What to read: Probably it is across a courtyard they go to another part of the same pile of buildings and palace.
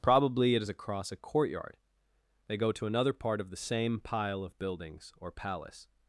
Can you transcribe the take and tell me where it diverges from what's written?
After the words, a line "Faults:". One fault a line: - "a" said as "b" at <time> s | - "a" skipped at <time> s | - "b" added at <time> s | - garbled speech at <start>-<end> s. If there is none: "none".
Probably it is across a courtyard they go to another part of the same pile of buildings or palace.
Faults:
- "and" said as "or" at 5.2 s